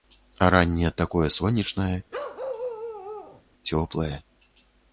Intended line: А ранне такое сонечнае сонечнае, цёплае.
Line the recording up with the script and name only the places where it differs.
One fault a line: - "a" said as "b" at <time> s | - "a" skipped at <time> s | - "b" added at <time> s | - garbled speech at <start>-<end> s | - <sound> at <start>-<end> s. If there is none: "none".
- "сонечнае" skipped at 1.9 s
- bark at 2.1-3.4 s